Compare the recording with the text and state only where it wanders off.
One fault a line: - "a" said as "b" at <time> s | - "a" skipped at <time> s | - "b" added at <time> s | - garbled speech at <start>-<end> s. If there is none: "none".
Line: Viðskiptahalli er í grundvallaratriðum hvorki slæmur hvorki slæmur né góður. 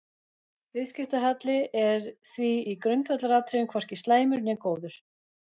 - "því" added at 2.3 s
- "hvorki slæmur" skipped at 4.5 s